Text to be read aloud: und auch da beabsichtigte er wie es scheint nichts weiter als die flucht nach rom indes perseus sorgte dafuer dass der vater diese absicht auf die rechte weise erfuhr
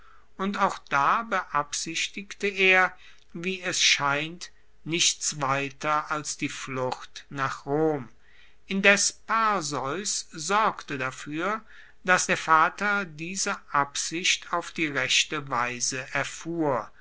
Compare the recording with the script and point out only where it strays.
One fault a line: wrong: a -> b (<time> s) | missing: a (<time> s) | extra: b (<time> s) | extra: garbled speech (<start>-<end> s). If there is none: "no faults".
no faults